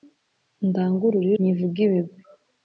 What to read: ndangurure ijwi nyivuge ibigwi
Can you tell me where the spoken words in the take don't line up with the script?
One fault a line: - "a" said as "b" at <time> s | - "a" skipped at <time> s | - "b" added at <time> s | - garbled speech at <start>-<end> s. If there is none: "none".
- "ijwi" skipped at 1.3 s